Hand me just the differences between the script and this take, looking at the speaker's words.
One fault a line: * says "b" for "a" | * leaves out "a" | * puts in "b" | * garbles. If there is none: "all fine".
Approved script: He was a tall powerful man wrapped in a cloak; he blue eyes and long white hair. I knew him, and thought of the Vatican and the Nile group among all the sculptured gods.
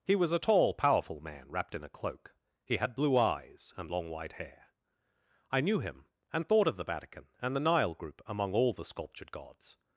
* puts in "had"